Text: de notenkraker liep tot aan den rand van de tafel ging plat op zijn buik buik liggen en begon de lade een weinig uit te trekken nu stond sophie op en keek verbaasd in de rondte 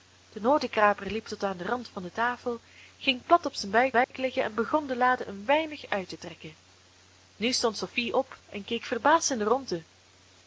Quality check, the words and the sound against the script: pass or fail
fail